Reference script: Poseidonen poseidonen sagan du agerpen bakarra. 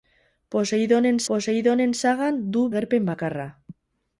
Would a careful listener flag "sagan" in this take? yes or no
no